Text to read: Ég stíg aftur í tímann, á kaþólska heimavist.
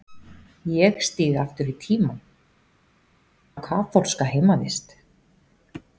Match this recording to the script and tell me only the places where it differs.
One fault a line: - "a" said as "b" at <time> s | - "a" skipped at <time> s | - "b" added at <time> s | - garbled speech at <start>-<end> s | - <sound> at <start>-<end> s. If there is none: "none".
none